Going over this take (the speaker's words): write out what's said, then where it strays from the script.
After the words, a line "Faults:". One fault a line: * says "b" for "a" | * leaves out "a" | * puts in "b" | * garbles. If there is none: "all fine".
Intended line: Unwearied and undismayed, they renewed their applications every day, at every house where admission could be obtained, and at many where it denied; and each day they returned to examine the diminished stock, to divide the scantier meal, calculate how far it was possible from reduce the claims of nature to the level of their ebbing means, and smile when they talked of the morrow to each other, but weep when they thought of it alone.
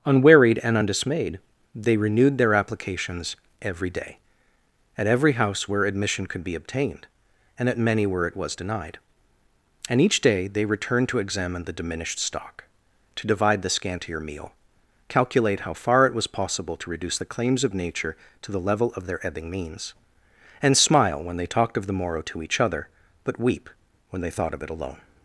Unwearied and undismayed, they renewed their applications every day, at every house where admission could be obtained, and at many where it was denied; and each day they returned to examine the diminished stock, to divide the scantier meal, calculate how far it was possible to reduce the claims of nature to the level of their ebbing means, and smile when they talked of the morrow to each other, but weep when they thought of it alone.
Faults:
* puts in "was"
* says "to" for "from"